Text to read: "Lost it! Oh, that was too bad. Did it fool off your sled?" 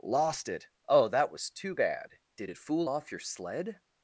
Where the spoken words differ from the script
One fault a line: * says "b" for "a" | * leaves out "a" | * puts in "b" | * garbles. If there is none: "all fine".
all fine